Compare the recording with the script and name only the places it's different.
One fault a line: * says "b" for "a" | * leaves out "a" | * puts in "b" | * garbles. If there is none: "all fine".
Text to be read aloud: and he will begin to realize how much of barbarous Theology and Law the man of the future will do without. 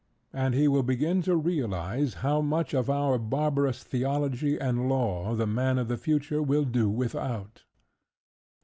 * puts in "our"